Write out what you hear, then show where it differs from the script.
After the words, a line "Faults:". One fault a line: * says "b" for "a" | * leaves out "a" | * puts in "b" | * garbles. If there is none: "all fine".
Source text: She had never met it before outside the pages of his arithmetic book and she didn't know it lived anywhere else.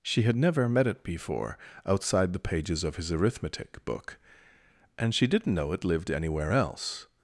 She had never met it before outside the pages of his arithmetic book and she didn't know it lived anywhere else.
Faults:
all fine